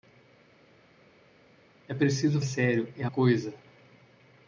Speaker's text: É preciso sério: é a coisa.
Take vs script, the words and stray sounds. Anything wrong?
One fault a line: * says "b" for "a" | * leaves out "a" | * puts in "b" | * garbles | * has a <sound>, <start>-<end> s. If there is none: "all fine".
all fine